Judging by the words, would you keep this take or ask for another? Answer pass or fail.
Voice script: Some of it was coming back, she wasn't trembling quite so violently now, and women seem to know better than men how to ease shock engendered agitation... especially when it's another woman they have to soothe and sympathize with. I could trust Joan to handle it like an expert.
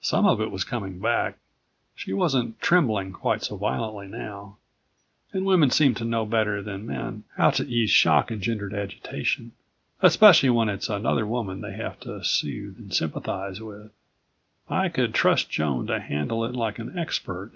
pass